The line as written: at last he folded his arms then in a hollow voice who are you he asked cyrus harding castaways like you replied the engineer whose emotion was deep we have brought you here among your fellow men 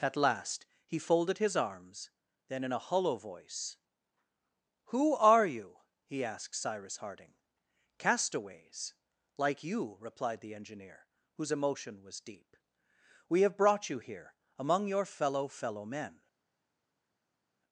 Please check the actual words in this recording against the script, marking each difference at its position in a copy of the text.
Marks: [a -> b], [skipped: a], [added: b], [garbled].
at last he folded his arms then in a hollow voice who are you he asked cyrus harding castaways like you replied the engineer whose emotion was deep we have brought you here among your fellow [added: fellow] men